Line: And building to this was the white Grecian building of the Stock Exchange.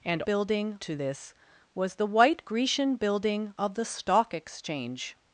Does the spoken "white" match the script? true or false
true